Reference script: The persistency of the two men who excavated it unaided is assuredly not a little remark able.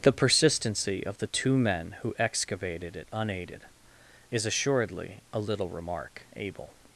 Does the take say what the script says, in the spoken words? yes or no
no